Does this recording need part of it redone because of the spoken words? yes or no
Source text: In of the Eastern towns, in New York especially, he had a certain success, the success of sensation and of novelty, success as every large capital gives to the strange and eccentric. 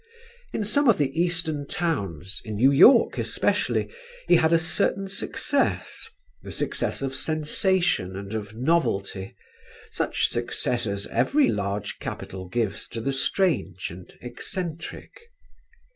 yes